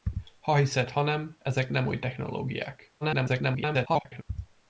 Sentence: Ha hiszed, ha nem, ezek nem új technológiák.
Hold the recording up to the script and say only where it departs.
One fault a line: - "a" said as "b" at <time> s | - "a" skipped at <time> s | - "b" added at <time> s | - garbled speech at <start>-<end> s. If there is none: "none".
- garbled speech at 3.0-4.2 s